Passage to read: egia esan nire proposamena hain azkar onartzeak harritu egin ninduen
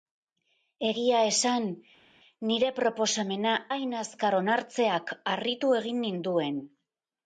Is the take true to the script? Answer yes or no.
yes